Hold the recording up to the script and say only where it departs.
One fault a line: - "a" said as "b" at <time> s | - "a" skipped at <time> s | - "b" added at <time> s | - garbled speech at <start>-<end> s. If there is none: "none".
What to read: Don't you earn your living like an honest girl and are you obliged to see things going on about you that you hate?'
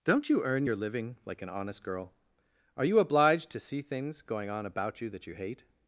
- "and" skipped at 2.1 s